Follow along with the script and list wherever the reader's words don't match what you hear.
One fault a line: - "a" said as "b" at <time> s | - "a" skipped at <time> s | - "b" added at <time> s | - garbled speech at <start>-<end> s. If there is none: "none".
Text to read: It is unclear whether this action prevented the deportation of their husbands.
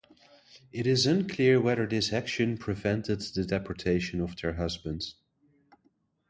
none